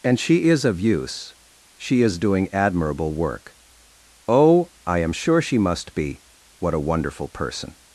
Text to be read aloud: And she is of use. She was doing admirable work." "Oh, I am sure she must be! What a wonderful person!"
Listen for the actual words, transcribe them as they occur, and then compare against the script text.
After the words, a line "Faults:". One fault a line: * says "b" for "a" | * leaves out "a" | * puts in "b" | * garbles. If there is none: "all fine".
And she is of use. She is doing admirable work." "Oh, I am sure she must be! What a wonderful person!"
Faults:
* says "is" for "was"